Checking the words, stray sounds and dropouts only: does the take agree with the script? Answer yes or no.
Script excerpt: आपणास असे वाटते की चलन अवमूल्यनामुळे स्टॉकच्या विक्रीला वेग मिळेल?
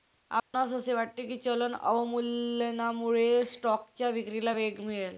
no